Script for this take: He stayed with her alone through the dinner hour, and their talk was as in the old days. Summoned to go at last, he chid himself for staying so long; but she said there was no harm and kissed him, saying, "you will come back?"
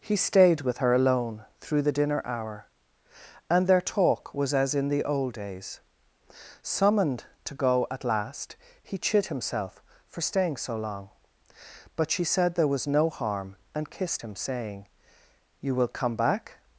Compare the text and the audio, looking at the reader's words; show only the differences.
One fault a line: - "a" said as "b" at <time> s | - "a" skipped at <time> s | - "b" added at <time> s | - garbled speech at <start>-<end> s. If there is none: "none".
none